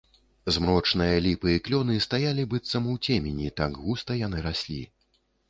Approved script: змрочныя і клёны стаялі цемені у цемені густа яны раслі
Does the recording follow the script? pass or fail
fail